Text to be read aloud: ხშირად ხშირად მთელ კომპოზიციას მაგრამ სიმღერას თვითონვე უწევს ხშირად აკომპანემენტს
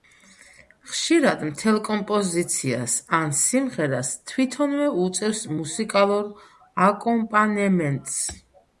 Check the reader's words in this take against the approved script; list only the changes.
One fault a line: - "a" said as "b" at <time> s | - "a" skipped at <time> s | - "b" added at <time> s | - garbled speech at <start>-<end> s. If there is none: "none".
- "ხშირად" skipped at 1.4 s
- "მაგრამ" said as "ან" at 3.2 s
- "ხშირად" said as "მუსიკალურ" at 5.6 s